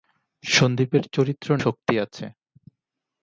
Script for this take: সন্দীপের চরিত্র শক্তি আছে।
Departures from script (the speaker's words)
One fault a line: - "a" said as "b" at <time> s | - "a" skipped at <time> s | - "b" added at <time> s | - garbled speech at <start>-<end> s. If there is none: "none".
none